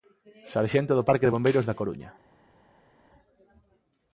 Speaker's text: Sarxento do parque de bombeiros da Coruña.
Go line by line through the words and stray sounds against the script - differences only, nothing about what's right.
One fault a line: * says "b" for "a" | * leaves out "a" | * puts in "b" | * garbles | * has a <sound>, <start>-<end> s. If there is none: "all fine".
all fine